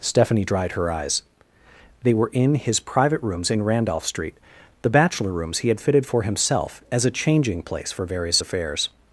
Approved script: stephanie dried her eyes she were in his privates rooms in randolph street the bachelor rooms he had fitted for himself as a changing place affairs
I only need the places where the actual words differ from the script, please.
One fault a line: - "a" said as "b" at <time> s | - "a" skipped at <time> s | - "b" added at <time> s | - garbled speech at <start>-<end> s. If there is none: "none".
- "she" said as "they" at 2.0 s
- "privates" said as "private" at 2.8 s
- "for various" added at 7.9 s